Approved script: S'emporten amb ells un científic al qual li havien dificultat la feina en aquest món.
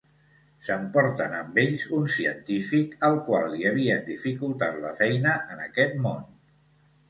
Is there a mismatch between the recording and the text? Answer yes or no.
no